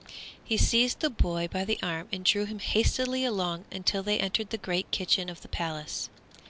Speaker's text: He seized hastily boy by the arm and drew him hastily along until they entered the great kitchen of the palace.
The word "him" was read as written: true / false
true